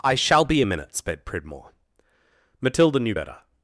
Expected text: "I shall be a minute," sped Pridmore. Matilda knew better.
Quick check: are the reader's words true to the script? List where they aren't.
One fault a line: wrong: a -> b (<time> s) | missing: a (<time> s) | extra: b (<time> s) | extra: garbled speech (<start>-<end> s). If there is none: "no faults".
no faults